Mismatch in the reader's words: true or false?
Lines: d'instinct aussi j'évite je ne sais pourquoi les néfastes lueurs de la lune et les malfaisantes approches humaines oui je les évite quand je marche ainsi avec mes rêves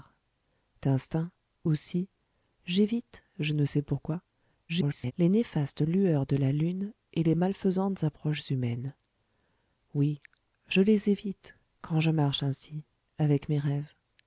true